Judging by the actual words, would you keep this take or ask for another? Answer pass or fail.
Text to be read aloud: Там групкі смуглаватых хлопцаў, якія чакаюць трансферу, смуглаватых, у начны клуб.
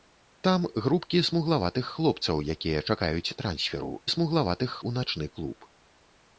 pass